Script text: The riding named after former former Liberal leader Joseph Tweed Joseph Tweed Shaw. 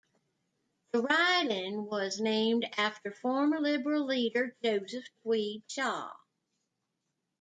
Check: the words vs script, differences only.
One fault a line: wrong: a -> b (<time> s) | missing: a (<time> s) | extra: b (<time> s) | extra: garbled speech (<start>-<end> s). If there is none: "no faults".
extra: was (1.9 s)
missing: former (3.6 s)
missing: Joseph Tweed (5.6 s)